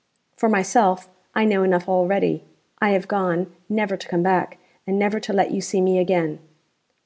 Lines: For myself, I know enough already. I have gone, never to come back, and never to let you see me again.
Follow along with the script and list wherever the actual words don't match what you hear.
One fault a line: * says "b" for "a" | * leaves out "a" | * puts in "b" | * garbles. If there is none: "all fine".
all fine